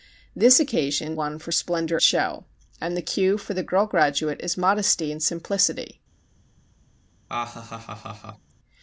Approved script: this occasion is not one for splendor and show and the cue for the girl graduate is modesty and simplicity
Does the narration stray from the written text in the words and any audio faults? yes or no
yes